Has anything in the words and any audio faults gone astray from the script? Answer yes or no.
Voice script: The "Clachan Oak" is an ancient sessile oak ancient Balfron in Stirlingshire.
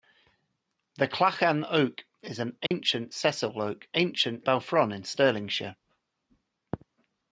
yes